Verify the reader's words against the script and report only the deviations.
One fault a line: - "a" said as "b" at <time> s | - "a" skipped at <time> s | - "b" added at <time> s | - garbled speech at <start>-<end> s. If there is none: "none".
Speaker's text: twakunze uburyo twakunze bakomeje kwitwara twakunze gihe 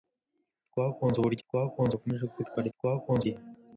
none